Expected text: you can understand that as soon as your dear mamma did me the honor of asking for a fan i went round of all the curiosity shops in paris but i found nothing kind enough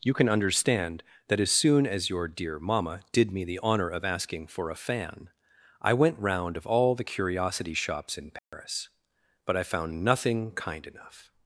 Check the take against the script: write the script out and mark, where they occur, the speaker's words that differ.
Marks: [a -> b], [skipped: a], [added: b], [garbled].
you can understand that as soon as your dear mamma did me the honor of asking for a fan i went round of all the curiosity shops in paris but i found nothing kind enough